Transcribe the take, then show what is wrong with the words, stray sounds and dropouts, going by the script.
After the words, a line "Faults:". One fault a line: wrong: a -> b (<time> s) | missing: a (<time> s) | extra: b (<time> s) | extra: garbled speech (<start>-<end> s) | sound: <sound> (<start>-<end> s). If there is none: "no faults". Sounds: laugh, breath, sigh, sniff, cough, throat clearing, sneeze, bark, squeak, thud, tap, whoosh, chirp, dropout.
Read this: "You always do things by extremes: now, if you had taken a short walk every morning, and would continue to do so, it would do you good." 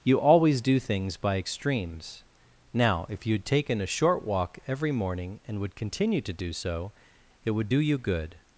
"You always do things by extremes: now, if you had taken a short walk every morning, and would continue to do so, it would do you good."
Faults:
no faults